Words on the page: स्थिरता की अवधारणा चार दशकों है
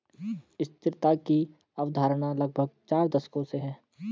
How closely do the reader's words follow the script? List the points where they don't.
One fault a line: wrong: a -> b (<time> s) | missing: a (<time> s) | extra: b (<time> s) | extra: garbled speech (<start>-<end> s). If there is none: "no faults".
extra: लगभग (2.3 s)
extra: से (3.4 s)